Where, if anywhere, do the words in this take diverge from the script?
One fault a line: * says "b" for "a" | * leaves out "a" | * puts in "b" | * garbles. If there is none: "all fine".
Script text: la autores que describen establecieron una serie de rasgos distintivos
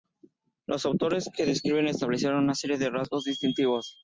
* says "los" for "la"